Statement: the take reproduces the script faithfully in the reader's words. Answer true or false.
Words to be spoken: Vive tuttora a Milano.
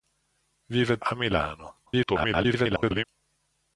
false